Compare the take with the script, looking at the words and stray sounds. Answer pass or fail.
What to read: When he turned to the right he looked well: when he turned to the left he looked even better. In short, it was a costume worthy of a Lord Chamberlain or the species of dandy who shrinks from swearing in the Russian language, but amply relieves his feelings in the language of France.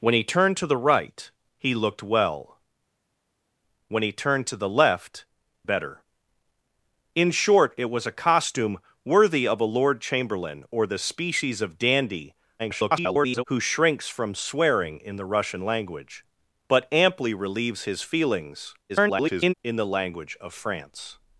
fail